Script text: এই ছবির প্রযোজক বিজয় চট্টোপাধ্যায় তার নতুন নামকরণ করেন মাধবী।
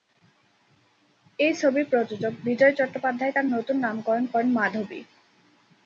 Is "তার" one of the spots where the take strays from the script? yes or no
no